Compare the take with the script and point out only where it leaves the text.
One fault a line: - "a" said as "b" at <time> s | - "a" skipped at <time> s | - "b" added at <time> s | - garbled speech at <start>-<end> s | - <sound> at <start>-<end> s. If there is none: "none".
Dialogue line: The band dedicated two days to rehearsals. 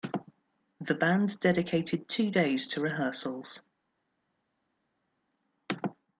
none